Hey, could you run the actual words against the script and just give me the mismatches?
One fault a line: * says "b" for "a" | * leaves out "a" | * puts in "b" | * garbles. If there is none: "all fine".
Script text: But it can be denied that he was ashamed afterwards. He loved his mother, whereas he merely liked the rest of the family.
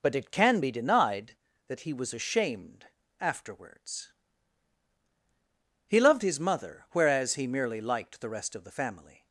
all fine